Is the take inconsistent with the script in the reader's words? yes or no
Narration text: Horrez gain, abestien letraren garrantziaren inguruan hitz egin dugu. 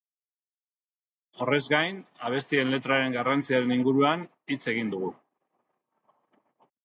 no